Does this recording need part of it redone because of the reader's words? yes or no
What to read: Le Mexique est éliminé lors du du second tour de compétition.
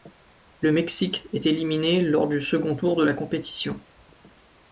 yes